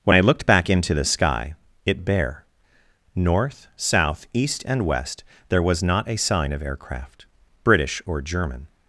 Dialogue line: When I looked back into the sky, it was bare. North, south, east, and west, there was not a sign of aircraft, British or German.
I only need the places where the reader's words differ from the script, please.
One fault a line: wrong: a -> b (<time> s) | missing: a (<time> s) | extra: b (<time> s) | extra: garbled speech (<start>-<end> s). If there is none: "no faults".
missing: was (2.0 s)